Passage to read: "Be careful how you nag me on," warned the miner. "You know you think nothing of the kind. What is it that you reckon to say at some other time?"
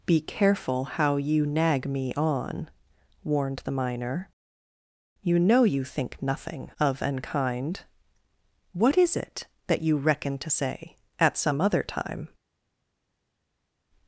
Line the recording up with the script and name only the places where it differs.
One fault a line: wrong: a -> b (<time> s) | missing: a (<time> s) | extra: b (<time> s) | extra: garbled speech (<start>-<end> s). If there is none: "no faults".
wrong: the -> an (7.0 s)